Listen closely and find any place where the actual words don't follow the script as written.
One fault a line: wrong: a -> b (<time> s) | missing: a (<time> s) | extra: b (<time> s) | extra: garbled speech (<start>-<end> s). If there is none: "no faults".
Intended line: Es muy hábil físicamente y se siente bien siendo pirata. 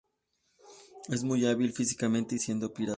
missing: se siente bien (2.4 s)